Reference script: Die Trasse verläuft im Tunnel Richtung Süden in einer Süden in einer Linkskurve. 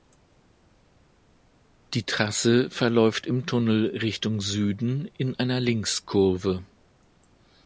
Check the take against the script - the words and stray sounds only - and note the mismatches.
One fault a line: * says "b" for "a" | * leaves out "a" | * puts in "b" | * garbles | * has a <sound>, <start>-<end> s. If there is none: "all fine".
* leaves out "Süden in einer"